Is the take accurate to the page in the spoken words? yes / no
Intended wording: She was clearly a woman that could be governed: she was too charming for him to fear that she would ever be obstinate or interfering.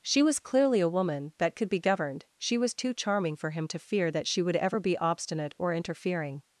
yes